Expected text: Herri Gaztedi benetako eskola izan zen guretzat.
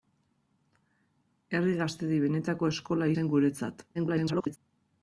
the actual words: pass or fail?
fail